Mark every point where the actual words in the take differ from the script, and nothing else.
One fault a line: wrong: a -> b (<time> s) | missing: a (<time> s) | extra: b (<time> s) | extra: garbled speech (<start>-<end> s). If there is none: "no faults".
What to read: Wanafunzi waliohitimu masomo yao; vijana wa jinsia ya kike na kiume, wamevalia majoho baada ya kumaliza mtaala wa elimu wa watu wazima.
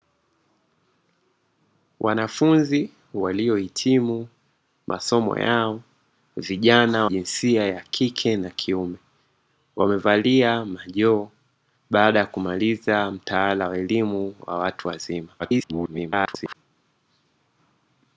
missing: wa (7.0 s)
extra: garbled speech (15.4-16.6 s)